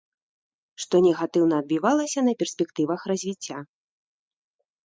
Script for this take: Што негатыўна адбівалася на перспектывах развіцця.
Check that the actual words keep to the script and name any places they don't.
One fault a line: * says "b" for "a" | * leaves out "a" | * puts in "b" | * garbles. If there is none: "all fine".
all fine